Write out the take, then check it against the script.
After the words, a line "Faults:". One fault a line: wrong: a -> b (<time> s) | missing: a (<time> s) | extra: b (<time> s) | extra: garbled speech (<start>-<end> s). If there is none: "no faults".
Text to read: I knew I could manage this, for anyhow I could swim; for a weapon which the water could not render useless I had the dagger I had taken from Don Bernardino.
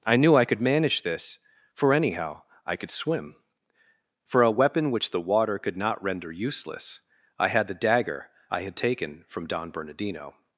I knew I could manage this, for anyhow I could swim; for a weapon which the water could not render useless I had the dagger I had taken from Don Bernardino.
Faults:
no faults